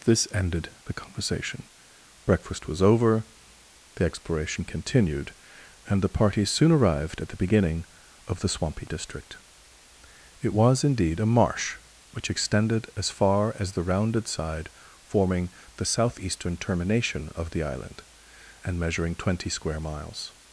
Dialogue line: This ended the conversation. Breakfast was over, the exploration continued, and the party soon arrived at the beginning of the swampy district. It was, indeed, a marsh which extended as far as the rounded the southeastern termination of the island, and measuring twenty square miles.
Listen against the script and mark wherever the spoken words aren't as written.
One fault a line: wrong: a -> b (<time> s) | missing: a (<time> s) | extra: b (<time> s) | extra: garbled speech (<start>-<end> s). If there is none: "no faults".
extra: side forming (14.3 s)